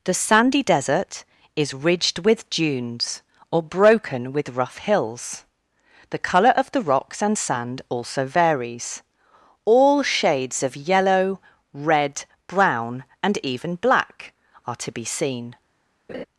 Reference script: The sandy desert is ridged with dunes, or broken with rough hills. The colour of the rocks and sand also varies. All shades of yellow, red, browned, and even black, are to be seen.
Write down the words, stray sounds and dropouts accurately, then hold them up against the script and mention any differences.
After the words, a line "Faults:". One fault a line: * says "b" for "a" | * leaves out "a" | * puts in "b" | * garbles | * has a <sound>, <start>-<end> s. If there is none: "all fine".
The sandy desert is ridged with dunes, or broken with rough hills. The colour of the rocks and sand also varies. All shades of yellow, red, brown, and even black, are to be seen.
Faults:
* says "brown" for "browned"
* has a laugh, 16.1-16.2 s